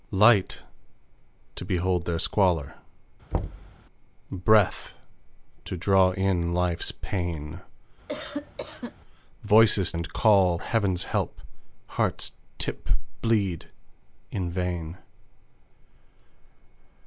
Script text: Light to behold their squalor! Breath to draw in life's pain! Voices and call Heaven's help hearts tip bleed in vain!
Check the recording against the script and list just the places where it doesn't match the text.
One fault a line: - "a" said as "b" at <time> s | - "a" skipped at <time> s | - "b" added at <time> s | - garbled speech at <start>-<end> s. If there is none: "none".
none